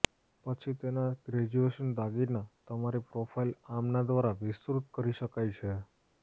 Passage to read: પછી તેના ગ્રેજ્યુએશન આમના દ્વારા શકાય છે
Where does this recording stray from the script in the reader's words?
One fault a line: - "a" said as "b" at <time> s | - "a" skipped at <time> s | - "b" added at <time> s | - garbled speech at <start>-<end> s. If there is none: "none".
- "દાગીના તમારી પ્રોફાઇલ" added at 2.0 s
- "વિસ્તૃત કરી" added at 4.4 s